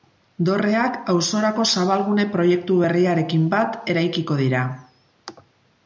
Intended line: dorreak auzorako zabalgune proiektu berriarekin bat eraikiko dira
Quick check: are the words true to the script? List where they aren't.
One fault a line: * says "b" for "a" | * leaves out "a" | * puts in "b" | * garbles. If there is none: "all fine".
all fine